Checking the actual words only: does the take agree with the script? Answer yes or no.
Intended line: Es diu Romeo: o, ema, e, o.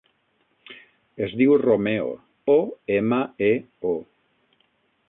yes